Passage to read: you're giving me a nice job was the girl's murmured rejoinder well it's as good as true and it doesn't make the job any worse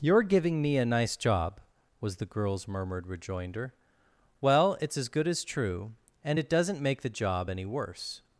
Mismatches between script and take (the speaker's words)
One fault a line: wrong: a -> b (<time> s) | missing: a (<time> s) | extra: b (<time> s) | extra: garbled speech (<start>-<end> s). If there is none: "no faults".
no faults